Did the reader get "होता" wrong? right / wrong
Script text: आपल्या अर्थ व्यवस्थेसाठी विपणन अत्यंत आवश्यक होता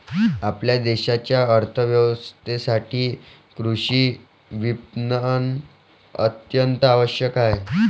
wrong